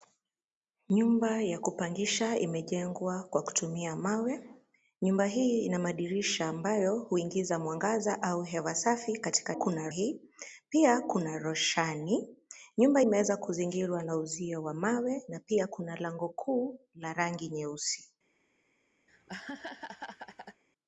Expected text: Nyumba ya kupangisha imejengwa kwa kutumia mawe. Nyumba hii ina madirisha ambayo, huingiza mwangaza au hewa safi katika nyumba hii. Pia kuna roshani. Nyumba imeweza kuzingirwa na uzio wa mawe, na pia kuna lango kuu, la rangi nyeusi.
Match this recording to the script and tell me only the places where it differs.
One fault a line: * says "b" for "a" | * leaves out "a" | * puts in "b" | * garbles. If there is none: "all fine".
* says "kuna" for "nyumba"